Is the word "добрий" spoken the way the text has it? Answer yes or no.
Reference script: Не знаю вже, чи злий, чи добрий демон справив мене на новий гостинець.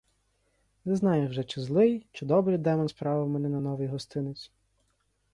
yes